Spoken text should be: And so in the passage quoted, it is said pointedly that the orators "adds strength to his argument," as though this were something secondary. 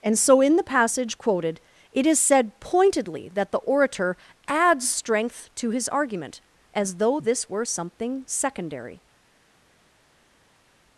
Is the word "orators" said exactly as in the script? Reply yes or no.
no